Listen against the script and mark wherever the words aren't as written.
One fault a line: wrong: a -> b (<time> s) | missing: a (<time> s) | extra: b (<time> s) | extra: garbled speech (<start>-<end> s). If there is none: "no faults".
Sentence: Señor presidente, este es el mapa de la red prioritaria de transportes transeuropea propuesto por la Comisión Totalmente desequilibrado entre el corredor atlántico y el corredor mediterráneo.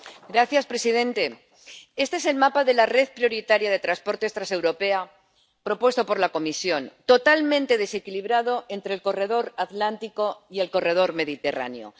no faults